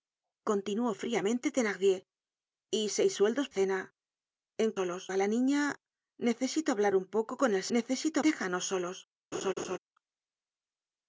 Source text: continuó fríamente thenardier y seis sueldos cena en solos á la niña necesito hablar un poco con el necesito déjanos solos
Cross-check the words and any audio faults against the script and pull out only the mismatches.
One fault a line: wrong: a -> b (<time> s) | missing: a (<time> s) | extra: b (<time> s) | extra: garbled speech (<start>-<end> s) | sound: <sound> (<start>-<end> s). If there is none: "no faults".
sound: laugh (9.3-9.8 s)